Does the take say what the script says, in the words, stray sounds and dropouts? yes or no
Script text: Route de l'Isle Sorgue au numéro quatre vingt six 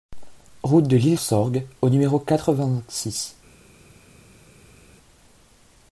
yes